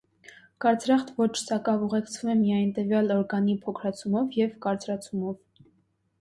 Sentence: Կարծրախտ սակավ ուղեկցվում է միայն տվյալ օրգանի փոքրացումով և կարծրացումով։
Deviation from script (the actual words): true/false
true